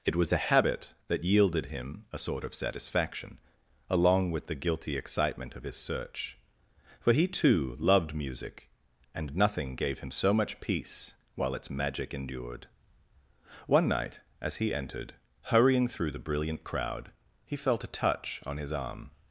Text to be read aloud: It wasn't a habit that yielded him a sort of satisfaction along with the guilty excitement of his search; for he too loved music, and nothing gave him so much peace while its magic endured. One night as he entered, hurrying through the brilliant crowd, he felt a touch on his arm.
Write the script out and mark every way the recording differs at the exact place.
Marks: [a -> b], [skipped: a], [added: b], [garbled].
It [wasn't -> was] a habit that yielded him a sort of satisfaction along with the guilty excitement of his search; for he too loved music, and nothing gave him so much peace while its magic endured. One night as he entered, hurrying through the brilliant crowd, he felt a touch on his arm.